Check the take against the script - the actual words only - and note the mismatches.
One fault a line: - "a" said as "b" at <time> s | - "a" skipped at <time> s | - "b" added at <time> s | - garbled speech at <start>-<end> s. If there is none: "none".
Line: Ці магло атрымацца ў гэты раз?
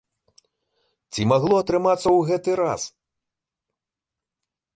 none